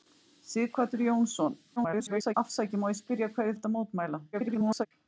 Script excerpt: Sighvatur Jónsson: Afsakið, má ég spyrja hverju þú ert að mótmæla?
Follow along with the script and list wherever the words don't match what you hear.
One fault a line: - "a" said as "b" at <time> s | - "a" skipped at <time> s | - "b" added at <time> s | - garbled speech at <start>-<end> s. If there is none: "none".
- garbled speech at 1.8-2.3 s
- "þú" skipped at 3.6 s
- garbled speech at 4.3-4.9 s